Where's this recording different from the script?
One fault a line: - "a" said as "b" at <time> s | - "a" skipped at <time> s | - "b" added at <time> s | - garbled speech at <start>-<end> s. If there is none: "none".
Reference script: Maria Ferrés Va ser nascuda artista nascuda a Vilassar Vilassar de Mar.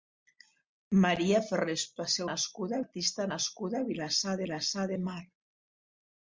none